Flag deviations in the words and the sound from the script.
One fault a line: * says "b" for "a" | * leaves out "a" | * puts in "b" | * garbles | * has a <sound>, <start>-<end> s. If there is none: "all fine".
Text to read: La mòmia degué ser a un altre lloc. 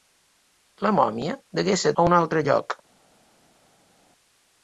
all fine